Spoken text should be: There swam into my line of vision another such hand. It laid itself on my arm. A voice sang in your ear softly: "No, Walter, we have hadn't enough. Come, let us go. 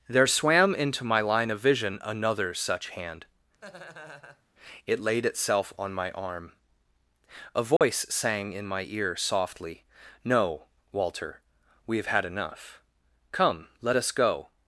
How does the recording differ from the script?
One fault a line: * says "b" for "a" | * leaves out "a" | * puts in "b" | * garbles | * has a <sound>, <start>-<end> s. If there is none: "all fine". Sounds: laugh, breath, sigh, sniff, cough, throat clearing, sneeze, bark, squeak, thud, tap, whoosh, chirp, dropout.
* has a laugh, 3.6-4.4 s
* has a dropout, 7.8-7.8 s
* says "my" for "your"
* says "had" for "hadn't"